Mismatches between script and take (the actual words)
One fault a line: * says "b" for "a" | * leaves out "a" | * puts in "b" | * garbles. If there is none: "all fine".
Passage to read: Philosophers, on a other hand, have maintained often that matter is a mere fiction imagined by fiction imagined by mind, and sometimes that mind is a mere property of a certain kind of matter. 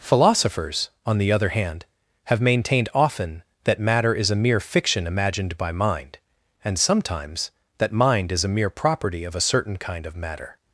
* says "the" for "a"
* leaves out "fiction imagined by"